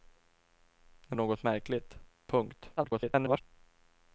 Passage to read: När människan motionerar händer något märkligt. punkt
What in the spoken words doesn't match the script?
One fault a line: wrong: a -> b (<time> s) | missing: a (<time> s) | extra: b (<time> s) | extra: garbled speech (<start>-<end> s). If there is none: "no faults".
missing: människan motionerar händer (1.2 s)
extra: garbled speech (2.8-3.4 s)